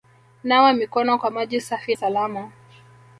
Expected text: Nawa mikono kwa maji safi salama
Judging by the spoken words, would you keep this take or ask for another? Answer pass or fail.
pass